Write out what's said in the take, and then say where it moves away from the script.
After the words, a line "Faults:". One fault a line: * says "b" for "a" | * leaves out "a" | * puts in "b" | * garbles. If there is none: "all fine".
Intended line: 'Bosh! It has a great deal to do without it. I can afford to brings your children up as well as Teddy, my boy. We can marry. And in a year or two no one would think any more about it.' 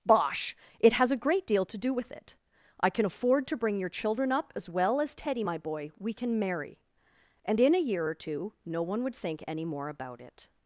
'Bosh! It has a great deal to do with it. I can afford to bring your children up as well as Teddy, my boy. We can marry. And in a year or two no one would think any more about it.'
Faults:
* says "with" for "without"
* says "bring" for "brings"